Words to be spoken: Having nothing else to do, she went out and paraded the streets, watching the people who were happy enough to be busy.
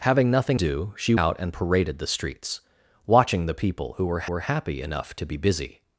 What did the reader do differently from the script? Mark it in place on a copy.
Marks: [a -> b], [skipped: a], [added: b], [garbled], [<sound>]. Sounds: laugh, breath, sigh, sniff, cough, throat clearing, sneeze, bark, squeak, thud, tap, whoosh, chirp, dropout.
Having nothing [skipped: else to] do, she [skipped: went] out and paraded the streets, watching the people who were [added: were] happy enough to be busy.